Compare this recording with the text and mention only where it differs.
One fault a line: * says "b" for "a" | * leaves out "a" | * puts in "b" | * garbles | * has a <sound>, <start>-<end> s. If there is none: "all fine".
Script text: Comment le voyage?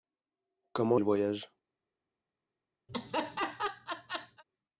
* has a laugh, 2.9-4.4 s